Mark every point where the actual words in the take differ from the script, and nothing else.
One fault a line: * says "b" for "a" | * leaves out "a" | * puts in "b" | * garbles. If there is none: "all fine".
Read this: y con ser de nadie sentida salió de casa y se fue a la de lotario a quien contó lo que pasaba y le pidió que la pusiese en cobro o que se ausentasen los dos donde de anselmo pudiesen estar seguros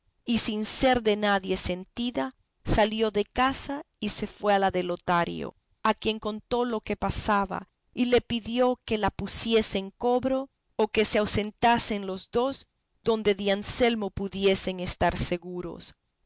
* says "sin" for "con"